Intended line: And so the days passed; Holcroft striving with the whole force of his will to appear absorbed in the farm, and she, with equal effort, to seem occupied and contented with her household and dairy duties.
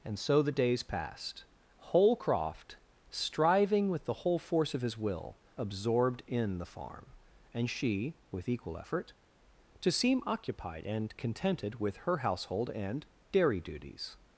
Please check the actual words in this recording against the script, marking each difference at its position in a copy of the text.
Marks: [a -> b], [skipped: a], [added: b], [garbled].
And so the days passed; Holcroft striving with the whole force of his will [skipped: to appear] absorbed in the farm, and she, with equal effort, to seem occupied and contented with her household and dairy duties.